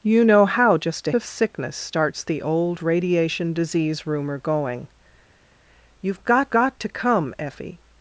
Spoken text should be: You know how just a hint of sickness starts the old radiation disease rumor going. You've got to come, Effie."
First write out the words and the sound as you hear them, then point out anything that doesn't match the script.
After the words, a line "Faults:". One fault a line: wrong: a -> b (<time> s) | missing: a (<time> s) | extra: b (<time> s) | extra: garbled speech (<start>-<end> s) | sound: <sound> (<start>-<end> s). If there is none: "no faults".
You know how just a of sickness starts the old radiation disease rumor going. You've got got to come, Effie."
Faults:
missing: hint (1.1 s)
extra: got (6.5 s)